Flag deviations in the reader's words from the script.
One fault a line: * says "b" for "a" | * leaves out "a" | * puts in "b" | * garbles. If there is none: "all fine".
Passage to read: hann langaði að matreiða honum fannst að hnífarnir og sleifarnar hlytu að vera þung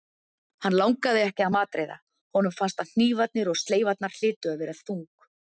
* puts in "ekki"